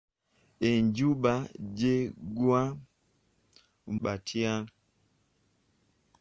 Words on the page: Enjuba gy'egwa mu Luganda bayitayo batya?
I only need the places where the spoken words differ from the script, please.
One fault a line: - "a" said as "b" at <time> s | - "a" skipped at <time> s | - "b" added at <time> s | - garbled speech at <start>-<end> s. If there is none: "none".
- "mu Luganda bayitayo" skipped at 2.6 s